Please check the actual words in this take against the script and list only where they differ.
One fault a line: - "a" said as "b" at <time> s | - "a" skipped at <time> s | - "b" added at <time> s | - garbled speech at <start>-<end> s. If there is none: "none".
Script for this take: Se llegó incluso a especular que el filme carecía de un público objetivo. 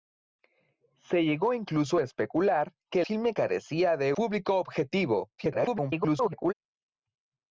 - "el" skipped at 3.0 s
- "un" skipped at 4.1 s
- garbled speech at 5.4-6.5 s